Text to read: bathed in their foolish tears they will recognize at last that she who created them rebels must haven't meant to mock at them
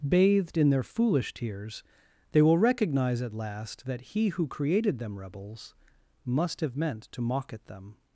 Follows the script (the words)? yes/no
no